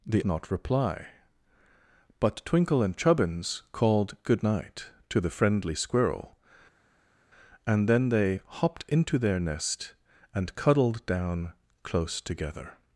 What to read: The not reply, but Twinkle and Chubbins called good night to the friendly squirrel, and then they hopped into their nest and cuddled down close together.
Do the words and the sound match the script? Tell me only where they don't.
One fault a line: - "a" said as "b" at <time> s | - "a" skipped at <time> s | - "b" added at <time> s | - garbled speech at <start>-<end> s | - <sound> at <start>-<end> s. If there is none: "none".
none